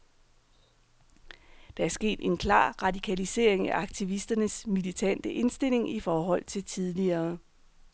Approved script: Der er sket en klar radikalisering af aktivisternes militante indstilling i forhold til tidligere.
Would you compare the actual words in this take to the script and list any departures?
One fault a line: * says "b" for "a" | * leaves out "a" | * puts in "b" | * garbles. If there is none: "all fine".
all fine